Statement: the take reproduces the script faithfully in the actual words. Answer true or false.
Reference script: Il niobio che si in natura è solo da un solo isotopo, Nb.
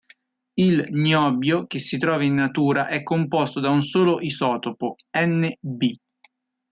false